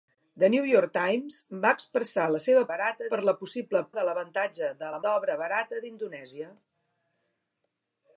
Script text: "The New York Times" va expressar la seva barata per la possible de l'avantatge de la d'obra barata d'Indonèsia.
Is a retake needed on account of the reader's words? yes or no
no